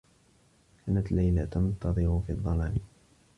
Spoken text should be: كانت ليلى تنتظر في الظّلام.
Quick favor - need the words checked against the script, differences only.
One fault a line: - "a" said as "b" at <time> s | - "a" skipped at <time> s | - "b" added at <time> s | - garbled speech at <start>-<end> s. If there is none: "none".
none